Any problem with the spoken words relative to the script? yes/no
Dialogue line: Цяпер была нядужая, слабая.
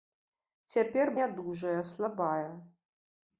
yes